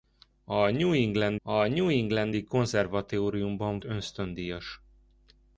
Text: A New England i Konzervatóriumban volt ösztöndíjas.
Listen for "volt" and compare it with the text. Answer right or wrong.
wrong